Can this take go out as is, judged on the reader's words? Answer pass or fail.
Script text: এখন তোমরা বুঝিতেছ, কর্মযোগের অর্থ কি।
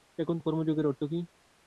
fail